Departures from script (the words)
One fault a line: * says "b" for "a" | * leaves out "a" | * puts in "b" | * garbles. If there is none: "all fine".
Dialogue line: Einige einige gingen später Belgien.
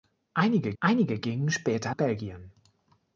all fine